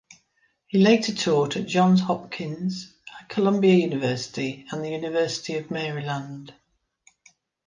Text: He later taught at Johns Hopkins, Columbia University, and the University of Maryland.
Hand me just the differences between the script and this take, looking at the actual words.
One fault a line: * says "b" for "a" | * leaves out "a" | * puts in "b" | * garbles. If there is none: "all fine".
all fine